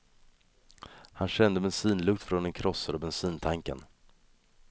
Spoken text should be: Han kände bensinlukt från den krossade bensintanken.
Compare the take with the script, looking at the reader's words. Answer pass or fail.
pass